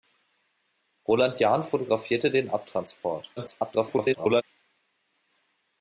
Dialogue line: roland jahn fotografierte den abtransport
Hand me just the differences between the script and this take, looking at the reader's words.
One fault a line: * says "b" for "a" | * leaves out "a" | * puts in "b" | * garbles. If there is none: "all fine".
* garbles